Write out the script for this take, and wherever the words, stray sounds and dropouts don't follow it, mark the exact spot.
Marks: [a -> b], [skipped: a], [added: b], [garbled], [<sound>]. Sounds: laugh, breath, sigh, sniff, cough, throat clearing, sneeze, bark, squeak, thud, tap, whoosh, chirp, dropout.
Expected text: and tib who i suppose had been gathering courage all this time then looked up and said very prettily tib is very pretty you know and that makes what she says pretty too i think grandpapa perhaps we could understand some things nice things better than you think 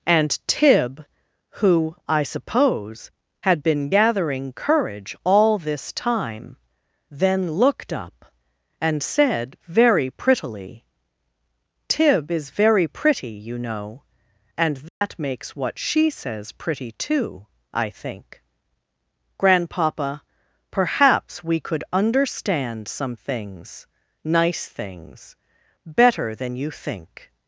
and tib who i suppose had been gathering courage all this time then looked up and said very prettily tib is very pretty you know and that [dropout] makes what she says pretty too i think grandpapa perhaps we could understand some things nice things better than you think